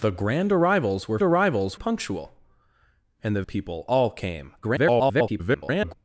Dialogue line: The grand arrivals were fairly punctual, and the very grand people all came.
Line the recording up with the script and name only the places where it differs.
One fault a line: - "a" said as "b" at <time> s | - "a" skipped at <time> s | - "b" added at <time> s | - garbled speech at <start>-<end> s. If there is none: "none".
- "fairly" said as "arrivals" at 1.2 s
- "very grand" skipped at 3.4 s
- garbled speech at 4.6-5.9 s